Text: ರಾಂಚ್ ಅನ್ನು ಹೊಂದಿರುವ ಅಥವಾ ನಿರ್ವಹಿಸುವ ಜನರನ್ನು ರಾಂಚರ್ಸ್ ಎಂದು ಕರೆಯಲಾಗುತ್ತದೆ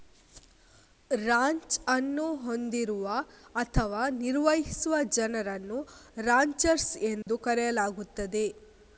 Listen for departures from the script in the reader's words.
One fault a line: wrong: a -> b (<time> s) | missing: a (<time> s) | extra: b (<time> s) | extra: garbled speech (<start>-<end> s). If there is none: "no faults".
no faults